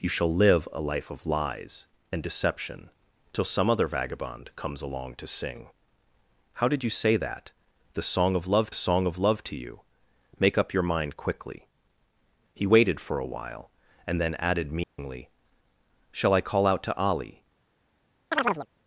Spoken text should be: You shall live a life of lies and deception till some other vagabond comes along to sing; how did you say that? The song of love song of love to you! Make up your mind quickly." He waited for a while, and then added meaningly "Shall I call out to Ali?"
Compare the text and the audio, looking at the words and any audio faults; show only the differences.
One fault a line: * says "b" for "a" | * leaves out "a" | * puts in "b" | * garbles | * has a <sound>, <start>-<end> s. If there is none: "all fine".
* has a dropout, 14.8-15.0 s
* has a chirp, 18.3-18.7 s